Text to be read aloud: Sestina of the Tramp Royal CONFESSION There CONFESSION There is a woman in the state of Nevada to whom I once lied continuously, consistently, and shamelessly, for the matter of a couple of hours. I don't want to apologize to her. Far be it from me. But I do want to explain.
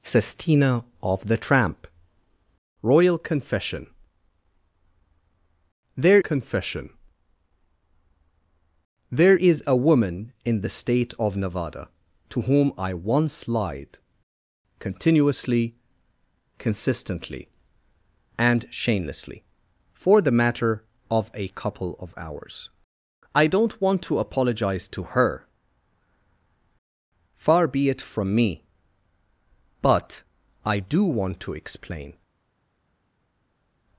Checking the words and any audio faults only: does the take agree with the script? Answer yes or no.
yes